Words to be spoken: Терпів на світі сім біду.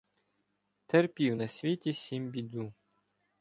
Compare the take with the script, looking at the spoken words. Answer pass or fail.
pass